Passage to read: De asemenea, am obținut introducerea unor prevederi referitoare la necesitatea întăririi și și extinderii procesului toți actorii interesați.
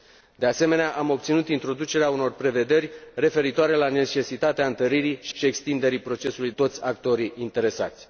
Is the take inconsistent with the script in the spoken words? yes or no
no